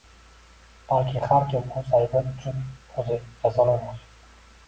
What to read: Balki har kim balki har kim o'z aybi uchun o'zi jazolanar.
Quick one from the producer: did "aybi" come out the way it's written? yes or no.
yes